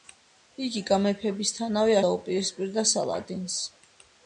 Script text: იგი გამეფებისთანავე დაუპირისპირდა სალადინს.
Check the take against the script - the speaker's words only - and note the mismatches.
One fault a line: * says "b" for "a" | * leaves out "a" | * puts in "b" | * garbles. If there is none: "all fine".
all fine